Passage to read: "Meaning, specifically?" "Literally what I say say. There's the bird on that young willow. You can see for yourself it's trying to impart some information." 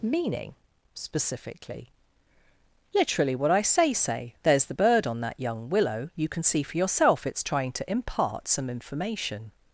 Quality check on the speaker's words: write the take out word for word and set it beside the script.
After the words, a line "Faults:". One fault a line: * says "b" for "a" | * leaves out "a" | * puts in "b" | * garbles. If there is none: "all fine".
"Meaning, specifically?" "Literally what I say say. There's the bird on that young willow. You can see for yourself it's trying to impart some information."
Faults:
all fine